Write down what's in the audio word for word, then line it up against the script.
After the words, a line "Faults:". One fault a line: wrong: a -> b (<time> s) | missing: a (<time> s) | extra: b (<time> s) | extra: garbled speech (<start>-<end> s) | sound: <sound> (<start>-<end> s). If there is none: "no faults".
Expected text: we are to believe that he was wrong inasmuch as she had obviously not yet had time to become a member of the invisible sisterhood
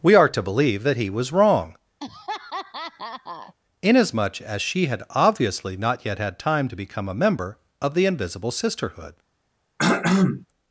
we are to believe that he was wrong inasmuch as she had obviously not yet had time to become a member of the invisible sisterhood
Faults:
sound: laugh (2.0-3.5 s)
sound: throat clearing (9.8-10.5 s)